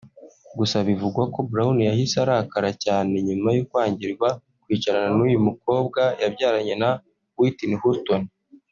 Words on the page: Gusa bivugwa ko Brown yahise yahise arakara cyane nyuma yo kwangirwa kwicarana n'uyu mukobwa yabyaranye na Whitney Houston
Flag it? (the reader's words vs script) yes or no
yes